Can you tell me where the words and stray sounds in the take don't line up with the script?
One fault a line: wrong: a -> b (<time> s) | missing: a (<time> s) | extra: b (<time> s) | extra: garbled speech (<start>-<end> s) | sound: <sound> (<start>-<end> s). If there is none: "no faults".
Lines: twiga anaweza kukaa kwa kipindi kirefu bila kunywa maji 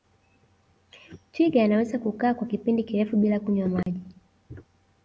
sound: dropout (3.8-3.9 s)